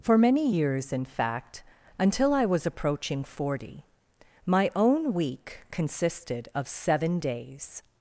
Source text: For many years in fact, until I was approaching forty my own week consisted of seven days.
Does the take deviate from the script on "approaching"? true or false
false